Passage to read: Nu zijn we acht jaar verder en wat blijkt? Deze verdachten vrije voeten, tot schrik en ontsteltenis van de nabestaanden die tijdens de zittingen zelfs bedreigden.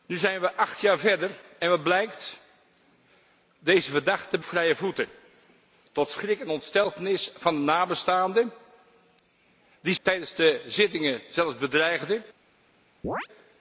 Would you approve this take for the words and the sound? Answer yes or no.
no